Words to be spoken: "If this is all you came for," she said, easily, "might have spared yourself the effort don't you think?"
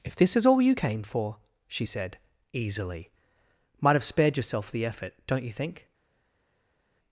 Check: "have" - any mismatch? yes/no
no